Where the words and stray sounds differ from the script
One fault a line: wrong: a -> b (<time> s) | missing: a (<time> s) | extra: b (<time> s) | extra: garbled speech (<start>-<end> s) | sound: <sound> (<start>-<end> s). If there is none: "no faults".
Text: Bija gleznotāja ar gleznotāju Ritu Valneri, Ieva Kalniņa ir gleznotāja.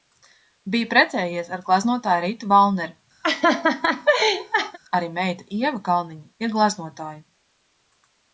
wrong: gleznotāja -> precējies (0.9 s)
sound: laugh (3.2-4.8 s)
extra: arī meita (5.0 s)